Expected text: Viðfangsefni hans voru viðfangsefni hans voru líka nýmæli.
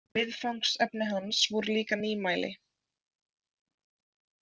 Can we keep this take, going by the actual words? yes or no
no